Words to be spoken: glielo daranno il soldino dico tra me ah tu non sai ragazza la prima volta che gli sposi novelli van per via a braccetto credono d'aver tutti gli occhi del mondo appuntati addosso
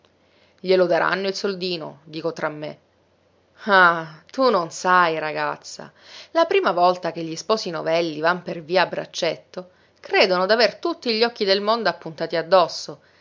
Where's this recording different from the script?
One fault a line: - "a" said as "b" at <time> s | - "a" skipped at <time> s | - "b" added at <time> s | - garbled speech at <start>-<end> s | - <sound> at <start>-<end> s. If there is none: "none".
none